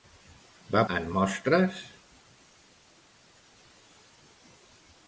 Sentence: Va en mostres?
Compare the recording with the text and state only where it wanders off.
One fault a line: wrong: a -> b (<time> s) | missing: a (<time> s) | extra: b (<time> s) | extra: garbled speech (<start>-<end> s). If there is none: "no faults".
no faults